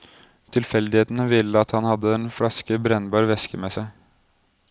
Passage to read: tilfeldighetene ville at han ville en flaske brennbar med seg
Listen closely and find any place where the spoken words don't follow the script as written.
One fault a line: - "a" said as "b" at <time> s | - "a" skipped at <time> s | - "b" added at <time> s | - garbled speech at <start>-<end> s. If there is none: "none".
- "ville" said as "hadde" at 1.9 s
- "væske" added at 3.3 s